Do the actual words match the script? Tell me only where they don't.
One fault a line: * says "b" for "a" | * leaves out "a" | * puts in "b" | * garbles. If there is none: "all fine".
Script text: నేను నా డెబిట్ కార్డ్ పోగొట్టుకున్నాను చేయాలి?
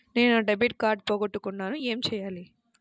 * puts in "ఏమి"